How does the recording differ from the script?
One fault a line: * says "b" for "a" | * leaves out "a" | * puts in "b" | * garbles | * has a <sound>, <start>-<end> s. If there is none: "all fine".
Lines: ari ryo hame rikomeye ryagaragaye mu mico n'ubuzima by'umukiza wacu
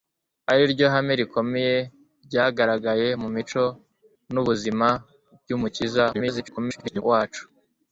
* garbles